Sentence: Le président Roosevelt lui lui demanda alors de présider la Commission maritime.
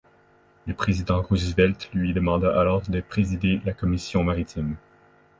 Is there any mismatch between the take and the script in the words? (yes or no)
yes